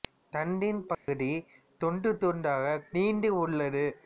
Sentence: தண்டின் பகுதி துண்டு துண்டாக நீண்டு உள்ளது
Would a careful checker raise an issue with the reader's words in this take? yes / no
no